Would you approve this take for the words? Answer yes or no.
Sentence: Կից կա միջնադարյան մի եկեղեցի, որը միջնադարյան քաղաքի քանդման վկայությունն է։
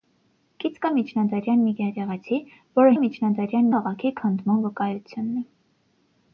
yes